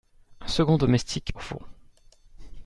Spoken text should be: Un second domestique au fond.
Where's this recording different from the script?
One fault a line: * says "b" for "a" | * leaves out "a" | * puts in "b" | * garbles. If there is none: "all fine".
all fine